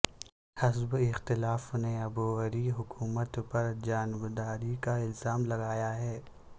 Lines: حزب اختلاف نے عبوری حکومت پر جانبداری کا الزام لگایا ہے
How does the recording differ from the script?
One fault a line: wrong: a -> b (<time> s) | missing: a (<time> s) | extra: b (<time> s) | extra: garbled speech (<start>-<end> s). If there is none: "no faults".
no faults